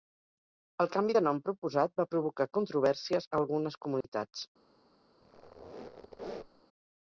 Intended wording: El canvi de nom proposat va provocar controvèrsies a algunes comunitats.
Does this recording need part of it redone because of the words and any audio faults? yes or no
yes